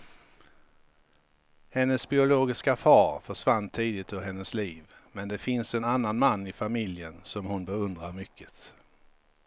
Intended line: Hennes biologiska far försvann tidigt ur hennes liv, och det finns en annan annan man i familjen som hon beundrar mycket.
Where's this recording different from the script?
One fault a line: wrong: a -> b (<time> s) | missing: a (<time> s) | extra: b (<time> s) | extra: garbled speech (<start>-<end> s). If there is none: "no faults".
wrong: och -> men (5.1 s)
missing: annan (6.2 s)